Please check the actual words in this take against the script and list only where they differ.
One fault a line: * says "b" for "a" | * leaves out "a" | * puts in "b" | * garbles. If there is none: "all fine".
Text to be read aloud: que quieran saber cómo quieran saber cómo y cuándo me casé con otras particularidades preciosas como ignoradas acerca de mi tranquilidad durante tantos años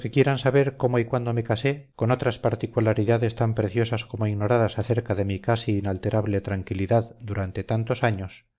* leaves out "quieran saber cómo"
* puts in "tan"
* puts in "casi inalterable"